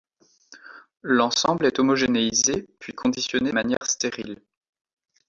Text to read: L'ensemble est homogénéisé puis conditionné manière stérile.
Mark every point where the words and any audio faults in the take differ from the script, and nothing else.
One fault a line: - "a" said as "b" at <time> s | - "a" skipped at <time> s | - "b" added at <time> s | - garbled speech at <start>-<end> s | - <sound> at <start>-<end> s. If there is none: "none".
- dropout at 3.8-3.8 s